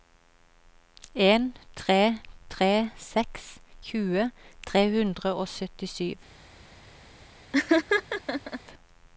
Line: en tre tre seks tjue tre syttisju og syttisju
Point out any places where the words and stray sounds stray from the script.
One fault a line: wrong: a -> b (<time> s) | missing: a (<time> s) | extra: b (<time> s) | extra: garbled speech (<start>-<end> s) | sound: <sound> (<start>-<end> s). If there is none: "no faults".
wrong: syttisju -> hundre (5.0 s)
sound: laugh (7.5-8.6 s)